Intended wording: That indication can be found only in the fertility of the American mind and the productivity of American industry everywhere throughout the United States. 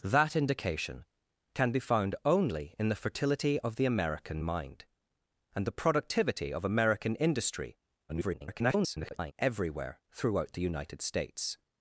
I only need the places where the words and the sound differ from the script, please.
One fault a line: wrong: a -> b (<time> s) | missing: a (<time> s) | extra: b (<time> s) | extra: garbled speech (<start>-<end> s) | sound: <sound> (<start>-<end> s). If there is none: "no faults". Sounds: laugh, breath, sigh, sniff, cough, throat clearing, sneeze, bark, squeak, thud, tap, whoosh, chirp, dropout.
extra: garbled speech (8.1-9.3 s)